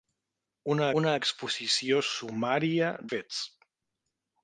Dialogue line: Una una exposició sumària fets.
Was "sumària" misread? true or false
false